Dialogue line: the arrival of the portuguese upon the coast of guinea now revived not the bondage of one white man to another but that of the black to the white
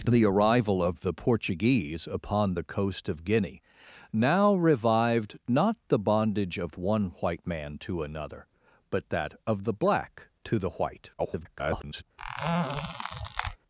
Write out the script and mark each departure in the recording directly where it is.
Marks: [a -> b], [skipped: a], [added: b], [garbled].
the arrival of the portuguese upon the coast of guinea now revived not the bondage of one white man to another but that of the black to the white [garbled]